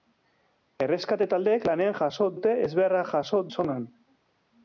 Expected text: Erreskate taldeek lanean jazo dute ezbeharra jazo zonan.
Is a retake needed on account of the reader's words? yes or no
no